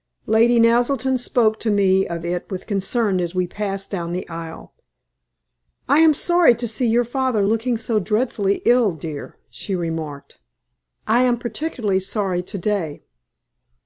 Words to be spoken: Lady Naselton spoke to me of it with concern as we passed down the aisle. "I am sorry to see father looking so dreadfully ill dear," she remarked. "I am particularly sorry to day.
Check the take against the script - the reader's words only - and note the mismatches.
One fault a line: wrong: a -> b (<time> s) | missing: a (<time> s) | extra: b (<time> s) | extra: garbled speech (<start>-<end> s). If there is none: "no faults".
extra: your (6.9 s)